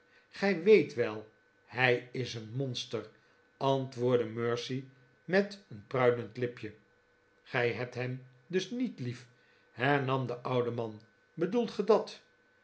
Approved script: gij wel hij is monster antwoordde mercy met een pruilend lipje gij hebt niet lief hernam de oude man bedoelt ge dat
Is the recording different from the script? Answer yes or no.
yes